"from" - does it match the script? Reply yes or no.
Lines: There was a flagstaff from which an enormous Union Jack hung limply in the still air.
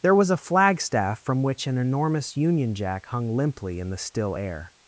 yes